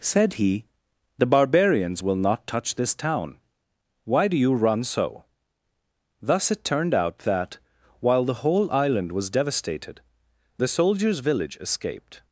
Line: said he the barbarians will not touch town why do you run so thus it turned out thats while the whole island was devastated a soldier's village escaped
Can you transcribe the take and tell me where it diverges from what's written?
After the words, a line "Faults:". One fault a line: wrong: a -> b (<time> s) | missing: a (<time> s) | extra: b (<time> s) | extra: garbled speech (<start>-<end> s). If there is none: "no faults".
said he the barbarians will not touch this town why do you run so thus it turned out that while the whole island was devastated the soldier's village escaped
Faults:
extra: this (2.8 s)
wrong: thats -> that (7.2 s)
wrong: a -> the (10.6 s)